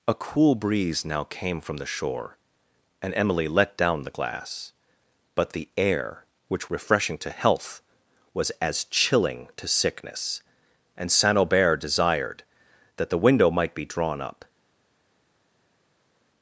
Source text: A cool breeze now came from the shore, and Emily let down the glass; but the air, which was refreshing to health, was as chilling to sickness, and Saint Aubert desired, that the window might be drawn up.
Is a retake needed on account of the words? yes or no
yes